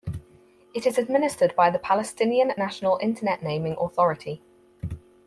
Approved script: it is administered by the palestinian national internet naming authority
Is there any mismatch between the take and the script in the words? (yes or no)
no